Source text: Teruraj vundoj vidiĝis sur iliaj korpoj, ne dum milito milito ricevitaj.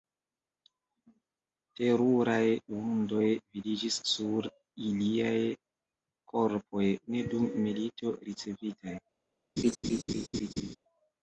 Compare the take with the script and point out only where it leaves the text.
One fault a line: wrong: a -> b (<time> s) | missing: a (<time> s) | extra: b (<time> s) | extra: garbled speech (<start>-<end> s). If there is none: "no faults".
missing: milito (8.2 s)